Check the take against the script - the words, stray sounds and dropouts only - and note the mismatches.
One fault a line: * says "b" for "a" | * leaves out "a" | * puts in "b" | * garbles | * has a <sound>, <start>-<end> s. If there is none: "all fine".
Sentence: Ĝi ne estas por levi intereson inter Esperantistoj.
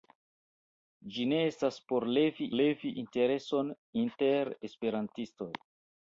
* puts in "levi"